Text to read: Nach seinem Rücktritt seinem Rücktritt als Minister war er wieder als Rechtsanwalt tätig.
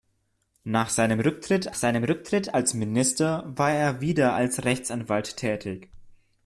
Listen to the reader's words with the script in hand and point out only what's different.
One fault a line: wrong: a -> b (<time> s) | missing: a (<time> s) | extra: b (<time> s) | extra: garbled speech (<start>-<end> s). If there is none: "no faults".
no faults